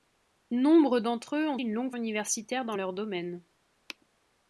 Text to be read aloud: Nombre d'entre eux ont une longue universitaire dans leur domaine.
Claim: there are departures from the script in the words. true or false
false